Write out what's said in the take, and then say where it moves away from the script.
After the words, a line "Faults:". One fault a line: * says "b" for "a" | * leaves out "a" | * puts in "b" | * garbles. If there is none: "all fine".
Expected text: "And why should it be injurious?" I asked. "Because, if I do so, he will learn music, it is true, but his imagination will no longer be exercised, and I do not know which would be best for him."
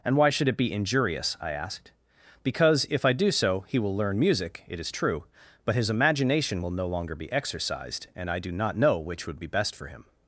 "And why should it be injurious?" I asked. "Because, if I do so, he will learn music, it is true, but his imagination will no longer be exercised, and I do not know which would be best for him."
Faults:
all fine